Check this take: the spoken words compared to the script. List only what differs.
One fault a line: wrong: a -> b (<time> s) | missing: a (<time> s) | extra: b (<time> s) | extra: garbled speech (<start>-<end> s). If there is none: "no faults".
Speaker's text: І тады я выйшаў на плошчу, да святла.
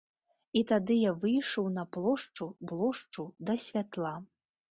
extra: плошчу (2.7 s)